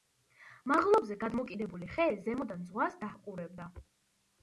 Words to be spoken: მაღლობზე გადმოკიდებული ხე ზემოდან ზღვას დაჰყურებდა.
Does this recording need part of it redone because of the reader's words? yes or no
no